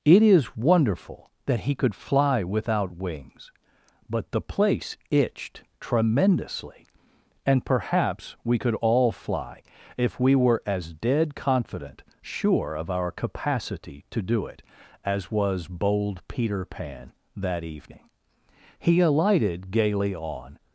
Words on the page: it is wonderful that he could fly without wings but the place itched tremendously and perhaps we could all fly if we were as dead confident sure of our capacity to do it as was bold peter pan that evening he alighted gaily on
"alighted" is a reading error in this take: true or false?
false